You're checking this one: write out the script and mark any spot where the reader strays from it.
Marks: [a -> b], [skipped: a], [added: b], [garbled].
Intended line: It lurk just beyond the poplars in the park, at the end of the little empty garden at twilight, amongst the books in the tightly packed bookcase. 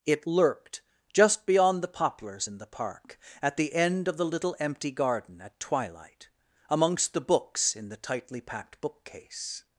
It [lurk -> lurked] just beyond the poplars in the park, at the end of the little empty garden at twilight, amongst the books in the tightly packed bookcase.